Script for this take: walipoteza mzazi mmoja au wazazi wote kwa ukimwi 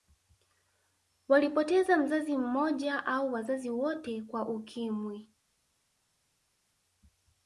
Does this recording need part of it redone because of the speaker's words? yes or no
no